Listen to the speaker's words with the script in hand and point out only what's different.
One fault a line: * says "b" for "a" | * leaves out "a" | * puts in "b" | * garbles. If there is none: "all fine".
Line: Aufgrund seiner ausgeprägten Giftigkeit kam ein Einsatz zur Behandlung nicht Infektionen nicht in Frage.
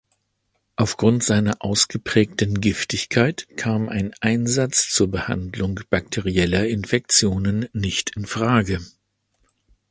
* says "bakterieller" for "nicht"